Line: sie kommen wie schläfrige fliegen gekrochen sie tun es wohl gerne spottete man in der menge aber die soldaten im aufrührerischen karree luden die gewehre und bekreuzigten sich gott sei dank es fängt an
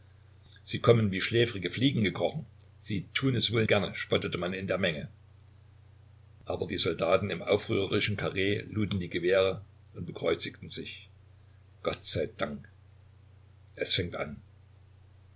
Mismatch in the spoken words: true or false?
false